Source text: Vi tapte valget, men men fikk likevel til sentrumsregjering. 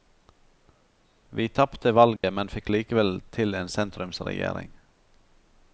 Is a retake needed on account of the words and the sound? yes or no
yes